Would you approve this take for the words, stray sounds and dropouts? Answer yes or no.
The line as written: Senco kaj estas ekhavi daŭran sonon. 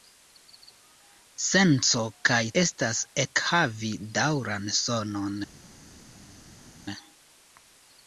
yes